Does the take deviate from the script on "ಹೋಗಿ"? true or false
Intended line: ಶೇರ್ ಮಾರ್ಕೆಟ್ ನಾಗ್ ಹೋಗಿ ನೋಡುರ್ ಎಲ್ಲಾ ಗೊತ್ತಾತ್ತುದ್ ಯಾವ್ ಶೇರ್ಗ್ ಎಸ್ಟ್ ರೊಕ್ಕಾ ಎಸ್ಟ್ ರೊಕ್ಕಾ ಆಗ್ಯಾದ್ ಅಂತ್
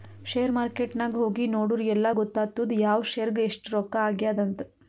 false